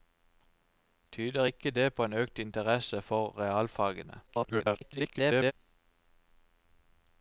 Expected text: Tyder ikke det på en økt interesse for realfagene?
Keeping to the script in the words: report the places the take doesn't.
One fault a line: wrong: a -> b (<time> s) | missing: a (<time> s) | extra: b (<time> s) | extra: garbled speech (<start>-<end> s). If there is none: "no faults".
extra: garbled speech (4.3-5.5 s)